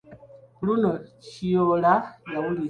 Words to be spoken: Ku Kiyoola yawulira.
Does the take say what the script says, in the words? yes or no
no